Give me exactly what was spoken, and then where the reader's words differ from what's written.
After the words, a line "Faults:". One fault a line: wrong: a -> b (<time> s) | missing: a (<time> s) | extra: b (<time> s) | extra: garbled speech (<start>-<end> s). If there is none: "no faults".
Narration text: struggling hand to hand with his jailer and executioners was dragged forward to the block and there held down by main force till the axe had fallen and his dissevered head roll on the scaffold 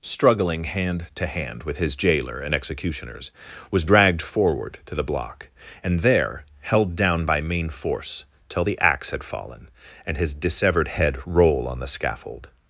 struggling hand to hand with his jailer and executioners was dragged forward to the block and there held down by main force till the axe had fallen and his dissevered head roll on the scaffold
Faults:
no faults